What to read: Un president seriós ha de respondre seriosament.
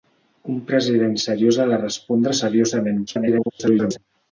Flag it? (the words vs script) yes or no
yes